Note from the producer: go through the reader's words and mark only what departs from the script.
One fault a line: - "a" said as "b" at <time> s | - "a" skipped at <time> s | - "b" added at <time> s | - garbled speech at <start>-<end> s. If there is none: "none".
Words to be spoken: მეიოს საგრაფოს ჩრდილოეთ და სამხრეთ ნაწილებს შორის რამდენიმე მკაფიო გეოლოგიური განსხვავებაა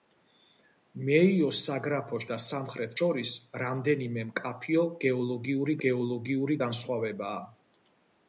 - "ჩრდილოეთ" skipped at 2.2 s
- "ნაწილებს" skipped at 3.0 s
- "გეოლოგიური" added at 5.9 s